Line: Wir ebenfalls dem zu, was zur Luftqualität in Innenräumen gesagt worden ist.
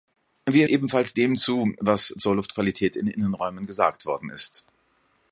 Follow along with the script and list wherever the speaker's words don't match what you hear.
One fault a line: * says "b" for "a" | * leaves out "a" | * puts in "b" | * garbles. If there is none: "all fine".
all fine